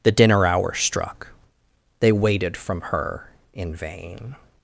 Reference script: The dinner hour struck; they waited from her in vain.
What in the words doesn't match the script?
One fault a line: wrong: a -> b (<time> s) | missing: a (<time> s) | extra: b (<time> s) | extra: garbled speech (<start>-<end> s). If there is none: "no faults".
no faults